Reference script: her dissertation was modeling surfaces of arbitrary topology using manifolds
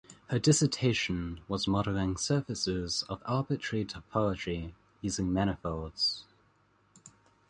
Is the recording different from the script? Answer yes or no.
no